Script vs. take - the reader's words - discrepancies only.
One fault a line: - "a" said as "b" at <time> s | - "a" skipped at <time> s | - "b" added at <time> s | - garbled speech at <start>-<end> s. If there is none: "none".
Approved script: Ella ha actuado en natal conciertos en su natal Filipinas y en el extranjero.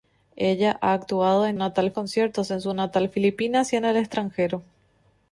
none